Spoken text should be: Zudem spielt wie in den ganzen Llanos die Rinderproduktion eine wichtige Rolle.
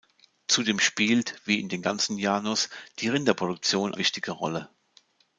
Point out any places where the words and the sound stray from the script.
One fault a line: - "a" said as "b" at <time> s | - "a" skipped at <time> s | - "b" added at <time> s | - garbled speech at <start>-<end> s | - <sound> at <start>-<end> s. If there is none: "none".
- "eine" skipped at 3.9 s